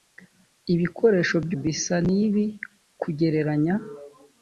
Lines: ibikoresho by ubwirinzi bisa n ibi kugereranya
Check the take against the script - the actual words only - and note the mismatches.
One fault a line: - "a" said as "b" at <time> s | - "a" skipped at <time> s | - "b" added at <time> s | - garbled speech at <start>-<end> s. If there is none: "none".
- "ubwirinzi" skipped at 1.5 s